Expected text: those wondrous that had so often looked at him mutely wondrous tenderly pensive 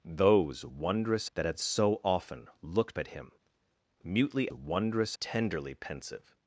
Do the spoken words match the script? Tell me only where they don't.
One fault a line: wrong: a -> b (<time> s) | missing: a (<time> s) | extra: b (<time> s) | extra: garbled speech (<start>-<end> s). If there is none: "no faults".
no faults